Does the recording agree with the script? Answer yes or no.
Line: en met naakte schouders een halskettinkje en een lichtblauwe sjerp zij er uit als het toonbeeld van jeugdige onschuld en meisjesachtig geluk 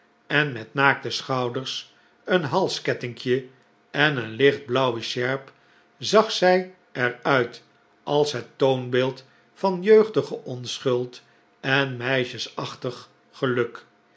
no